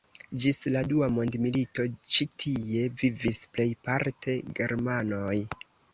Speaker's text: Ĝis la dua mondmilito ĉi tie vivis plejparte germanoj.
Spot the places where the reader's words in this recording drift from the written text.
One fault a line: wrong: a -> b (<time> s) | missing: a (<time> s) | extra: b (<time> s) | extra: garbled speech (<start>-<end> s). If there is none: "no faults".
no faults